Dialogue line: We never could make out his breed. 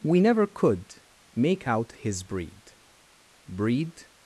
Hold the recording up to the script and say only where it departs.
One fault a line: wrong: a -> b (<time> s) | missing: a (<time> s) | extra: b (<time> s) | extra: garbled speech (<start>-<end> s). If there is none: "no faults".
extra: breed (3.5 s)